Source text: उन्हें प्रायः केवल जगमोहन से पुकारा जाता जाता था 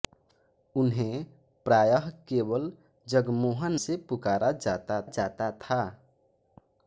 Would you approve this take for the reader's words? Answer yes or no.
yes